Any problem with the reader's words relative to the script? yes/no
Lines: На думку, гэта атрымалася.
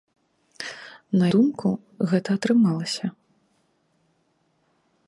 no